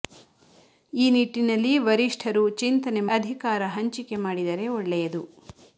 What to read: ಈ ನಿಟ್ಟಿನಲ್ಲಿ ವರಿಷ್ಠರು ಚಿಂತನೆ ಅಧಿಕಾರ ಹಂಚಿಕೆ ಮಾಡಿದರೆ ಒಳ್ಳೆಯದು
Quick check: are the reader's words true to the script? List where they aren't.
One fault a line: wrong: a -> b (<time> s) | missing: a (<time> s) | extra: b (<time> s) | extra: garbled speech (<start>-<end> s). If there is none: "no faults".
no faults